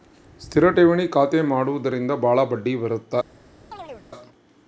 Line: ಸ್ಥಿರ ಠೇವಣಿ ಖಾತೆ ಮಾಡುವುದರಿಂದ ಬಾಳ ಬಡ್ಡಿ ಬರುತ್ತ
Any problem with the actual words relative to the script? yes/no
no